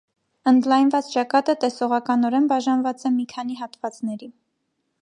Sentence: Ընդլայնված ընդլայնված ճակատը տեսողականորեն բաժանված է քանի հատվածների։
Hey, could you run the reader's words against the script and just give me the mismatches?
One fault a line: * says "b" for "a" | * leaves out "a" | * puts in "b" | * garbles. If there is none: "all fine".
* leaves out "ընդլայնված"
* puts in "մի"